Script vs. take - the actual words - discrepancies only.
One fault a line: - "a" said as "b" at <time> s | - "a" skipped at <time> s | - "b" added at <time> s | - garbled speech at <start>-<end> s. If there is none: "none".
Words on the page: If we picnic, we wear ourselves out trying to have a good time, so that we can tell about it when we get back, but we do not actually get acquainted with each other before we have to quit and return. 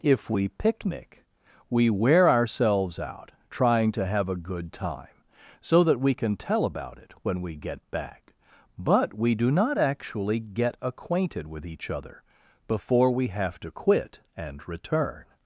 none